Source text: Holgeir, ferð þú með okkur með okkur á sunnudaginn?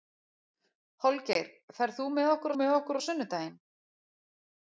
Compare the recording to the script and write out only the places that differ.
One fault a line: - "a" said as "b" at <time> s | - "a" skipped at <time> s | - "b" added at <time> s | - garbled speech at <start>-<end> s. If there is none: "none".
none